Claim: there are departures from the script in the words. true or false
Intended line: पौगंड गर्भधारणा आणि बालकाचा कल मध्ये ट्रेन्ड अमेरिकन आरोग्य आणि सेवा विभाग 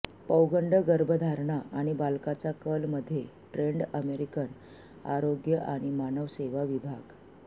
true